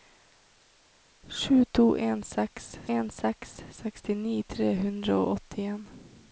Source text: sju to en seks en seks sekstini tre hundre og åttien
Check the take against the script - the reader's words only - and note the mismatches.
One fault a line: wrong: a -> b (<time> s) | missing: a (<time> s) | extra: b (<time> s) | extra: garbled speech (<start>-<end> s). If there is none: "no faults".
no faults